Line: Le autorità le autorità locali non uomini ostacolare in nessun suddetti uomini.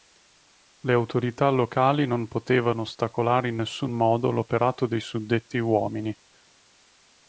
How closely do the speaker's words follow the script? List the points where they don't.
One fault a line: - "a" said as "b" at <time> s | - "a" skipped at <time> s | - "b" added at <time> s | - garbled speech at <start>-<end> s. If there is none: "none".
- "le autorità" skipped at 1.5 s
- "uomini" said as "potevano" at 2.3 s
- "modo l'operato dei" added at 3.9 s